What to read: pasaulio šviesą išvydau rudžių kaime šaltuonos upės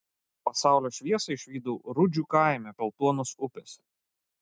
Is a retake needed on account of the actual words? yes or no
no